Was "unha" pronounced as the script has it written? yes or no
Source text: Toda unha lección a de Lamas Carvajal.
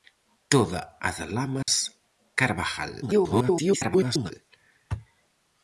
no